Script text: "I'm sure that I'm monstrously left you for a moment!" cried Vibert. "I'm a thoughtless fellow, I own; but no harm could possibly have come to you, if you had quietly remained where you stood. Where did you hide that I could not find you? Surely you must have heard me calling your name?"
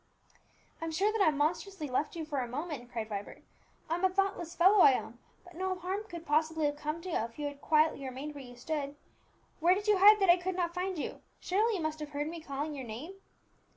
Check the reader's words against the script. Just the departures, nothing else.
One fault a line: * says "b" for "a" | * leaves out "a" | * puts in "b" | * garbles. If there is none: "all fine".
all fine